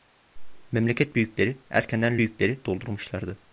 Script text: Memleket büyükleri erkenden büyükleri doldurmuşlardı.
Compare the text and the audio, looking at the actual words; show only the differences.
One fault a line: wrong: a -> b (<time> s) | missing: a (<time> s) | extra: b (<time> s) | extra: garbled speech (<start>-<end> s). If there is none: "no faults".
no faults